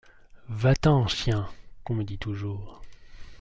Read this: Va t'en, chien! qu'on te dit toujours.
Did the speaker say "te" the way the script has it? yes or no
no